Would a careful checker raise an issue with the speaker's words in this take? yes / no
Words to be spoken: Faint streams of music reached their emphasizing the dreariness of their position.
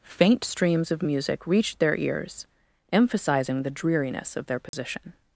yes